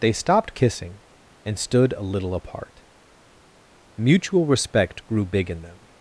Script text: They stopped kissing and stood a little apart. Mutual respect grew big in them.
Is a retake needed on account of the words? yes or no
no